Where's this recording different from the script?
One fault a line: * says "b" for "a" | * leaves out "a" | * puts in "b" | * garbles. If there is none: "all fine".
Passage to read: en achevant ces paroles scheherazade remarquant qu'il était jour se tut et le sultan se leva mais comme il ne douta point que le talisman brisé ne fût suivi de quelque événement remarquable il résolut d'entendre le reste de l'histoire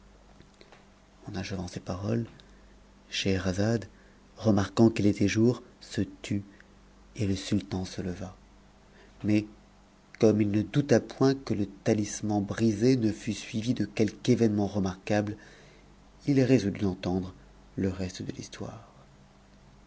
all fine